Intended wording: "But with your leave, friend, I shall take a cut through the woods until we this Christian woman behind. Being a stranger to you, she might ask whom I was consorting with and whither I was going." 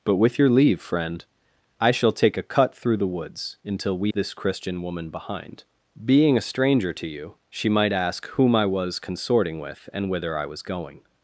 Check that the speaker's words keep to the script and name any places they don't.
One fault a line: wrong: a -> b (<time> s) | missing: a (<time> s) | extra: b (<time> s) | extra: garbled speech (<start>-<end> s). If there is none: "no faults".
no faults